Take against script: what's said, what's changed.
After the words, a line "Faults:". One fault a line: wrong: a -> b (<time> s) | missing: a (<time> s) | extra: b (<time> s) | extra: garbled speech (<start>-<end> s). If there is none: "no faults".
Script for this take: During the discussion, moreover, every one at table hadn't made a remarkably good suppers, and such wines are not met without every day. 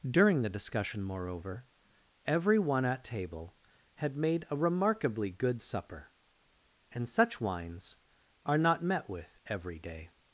During the discussion, moreover, every one at table had made a remarkably good supper, and such wines are not met with every day.
Faults:
wrong: hadn't -> had (4.0 s)
wrong: suppers -> supper (5.6 s)
wrong: without -> with (9.1 s)